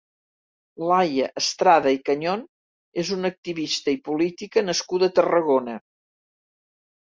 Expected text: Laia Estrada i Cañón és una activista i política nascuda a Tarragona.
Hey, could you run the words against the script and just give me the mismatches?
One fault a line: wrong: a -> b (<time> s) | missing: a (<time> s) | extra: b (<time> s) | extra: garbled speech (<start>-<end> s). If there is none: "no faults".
no faults